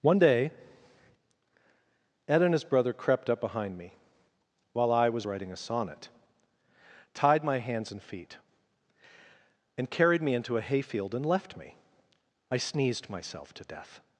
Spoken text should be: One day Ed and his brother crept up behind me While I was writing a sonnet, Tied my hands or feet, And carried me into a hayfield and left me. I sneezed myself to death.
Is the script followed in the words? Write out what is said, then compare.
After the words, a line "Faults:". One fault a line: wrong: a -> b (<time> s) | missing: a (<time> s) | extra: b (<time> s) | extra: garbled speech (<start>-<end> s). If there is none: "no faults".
One day Ed and his brother crept up behind me While I was writing a sonnet, Tied my hands and feet, And carried me into a hayfield and left me. I sneezed myself to death.
Faults:
wrong: or -> and (7.9 s)